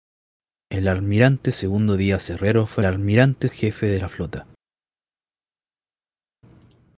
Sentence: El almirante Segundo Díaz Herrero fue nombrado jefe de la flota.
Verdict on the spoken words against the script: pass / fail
fail